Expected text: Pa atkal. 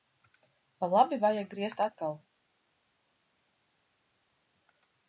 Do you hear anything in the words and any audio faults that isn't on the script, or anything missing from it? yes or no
yes